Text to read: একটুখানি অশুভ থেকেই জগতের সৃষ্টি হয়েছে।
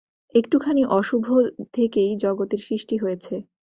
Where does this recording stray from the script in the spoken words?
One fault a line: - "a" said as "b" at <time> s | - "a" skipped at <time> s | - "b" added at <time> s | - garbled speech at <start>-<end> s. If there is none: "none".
none